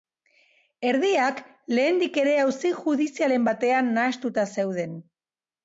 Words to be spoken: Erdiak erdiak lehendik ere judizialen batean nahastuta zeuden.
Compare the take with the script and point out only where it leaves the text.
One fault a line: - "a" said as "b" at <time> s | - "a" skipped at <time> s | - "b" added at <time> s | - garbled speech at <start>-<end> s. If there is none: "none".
- "erdiak" skipped at 1.4 s
- "auzi" added at 2.5 s